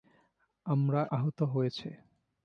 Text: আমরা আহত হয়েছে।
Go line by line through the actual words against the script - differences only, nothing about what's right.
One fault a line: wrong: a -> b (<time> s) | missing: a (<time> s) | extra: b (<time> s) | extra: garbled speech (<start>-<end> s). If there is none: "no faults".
no faults